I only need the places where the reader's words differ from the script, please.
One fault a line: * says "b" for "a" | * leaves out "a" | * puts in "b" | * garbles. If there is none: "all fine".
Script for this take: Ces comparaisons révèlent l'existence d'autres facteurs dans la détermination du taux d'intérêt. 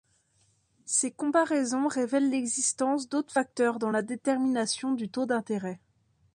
all fine